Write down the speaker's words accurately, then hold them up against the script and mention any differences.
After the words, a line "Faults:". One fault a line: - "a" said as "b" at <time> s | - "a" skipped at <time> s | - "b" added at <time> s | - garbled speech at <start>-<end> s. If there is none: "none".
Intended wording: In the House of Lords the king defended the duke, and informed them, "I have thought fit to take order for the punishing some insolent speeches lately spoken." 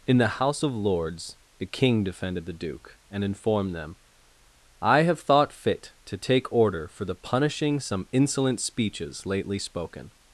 In the House of Lords the king defended the duke, and informed them, "I have thought fit to take order for the punishing some insolent speeches lately spoken."
Faults:
none